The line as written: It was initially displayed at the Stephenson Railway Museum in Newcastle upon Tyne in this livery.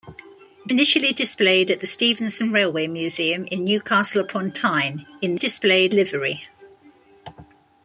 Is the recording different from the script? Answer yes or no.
yes